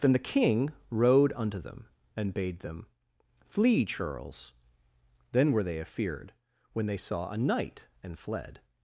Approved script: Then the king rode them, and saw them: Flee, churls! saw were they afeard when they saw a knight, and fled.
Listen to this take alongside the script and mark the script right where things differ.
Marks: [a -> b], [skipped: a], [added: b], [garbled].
Then the king rode [added: unto] them, and [saw -> bade] them: Flee, churls! [saw -> then] were they afeard when they saw a knight, and fled.